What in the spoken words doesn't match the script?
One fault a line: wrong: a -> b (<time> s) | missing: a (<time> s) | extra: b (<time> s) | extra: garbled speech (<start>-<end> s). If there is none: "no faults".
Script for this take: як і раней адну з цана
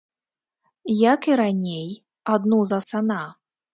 no faults